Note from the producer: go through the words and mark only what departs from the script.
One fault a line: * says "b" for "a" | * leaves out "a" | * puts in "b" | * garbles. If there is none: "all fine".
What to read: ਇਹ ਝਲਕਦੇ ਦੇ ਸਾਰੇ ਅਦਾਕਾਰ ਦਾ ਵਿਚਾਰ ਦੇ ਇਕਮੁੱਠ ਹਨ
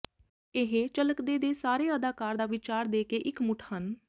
* puts in "ਕੇ"